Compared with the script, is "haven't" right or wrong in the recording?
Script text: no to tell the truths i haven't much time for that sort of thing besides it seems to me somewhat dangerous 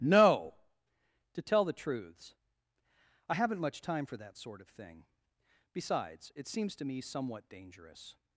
right